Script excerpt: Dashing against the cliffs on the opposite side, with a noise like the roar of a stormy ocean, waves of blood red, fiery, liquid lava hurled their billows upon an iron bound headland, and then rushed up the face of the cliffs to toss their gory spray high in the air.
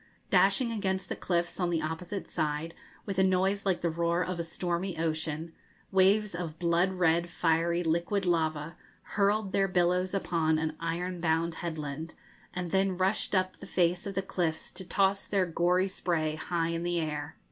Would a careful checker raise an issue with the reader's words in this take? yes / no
no